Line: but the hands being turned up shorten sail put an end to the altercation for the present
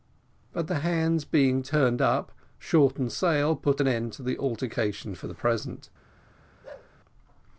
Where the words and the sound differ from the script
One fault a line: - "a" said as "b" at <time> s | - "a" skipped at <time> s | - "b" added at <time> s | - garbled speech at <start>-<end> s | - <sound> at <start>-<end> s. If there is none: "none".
- bark at 6.6-6.9 s